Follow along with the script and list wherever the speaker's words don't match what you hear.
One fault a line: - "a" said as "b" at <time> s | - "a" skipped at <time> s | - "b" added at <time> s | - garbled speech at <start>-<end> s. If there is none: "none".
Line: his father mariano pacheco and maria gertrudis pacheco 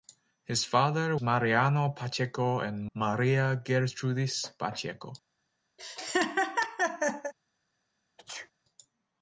none